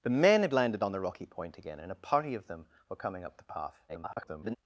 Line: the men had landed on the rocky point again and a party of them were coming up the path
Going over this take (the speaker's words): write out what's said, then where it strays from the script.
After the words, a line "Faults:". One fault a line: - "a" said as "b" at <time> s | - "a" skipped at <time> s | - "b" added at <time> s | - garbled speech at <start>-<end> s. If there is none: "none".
the men had landed on the rocky point again and a party of them were coming up the path [garbled]
Faults:
- garbled speech at 3.9-4.6 s